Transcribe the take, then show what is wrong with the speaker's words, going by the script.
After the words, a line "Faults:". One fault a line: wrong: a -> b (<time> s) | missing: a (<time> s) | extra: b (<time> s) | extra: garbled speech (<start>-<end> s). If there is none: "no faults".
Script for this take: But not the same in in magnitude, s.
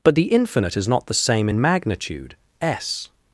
But the Infinite is not the same in magnitude, s.
Faults:
extra: the Infinite is (0.1 s)
missing: in (1.6 s)